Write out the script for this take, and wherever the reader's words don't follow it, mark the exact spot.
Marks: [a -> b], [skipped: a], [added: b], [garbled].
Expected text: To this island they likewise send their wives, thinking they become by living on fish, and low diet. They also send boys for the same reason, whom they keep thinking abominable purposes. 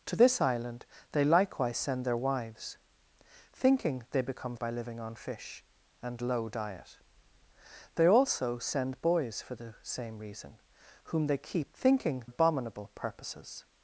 To this island they likewise send their wives, thinking they become by living on fish, and low diet. They also send boys for the same reason, whom they keep thinking abominable purposes.